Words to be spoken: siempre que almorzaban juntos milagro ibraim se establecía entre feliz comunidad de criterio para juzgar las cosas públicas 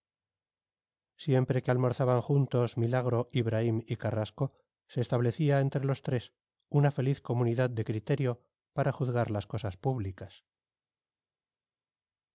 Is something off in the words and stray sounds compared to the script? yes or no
yes